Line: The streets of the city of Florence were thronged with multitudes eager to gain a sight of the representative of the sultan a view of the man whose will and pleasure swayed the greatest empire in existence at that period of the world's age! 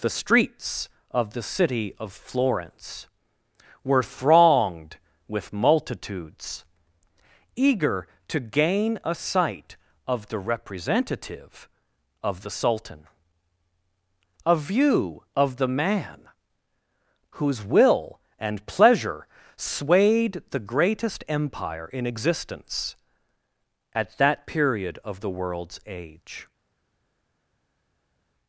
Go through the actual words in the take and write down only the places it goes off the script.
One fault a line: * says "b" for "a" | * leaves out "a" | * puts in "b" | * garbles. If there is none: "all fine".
all fine